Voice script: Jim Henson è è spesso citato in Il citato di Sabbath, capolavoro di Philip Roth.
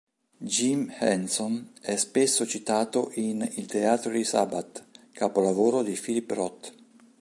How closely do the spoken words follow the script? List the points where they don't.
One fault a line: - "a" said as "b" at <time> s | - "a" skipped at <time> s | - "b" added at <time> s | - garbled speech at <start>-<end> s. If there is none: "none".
- "è" skipped at 2.0 s
- "citato" said as "teatro" at 3.7 s